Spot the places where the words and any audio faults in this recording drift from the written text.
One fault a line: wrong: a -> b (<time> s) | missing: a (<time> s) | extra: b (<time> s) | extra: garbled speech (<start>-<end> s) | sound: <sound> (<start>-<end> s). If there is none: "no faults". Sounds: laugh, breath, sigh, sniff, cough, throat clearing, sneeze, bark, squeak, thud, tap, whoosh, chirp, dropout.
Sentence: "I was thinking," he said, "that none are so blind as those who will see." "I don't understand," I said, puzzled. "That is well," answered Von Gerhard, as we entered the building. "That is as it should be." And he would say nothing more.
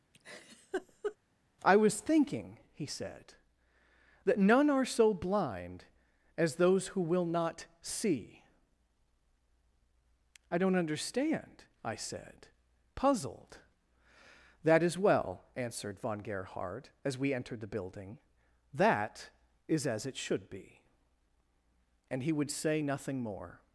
sound: laugh (0.1-1.2 s)
extra: not (7.2 s)